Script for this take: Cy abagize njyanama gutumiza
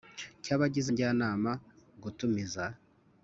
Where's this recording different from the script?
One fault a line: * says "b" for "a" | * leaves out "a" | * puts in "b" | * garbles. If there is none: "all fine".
all fine